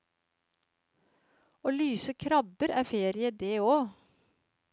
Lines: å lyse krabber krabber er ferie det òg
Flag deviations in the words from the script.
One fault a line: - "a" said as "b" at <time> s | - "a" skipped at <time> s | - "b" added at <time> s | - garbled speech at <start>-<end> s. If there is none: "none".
- "krabber" skipped at 2.7 s